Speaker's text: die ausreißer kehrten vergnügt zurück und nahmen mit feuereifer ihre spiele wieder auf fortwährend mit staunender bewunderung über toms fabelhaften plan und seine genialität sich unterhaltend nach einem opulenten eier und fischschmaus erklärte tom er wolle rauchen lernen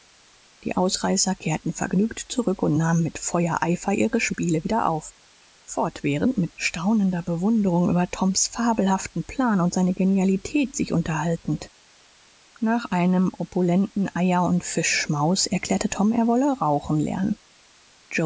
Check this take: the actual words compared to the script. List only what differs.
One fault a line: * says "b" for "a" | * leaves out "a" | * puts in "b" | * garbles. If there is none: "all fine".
all fine